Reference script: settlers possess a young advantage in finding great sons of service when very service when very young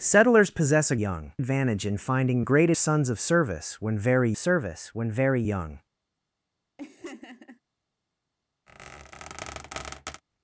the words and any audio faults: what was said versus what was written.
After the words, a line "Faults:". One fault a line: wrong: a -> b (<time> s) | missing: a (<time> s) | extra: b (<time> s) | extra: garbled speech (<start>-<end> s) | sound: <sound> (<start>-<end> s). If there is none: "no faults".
settlers possess a young advantage in finding great sons of service when very service when very young
Faults:
sound: laugh (6.8-7.6 s)
sound: squeak (8.7-10.2 s)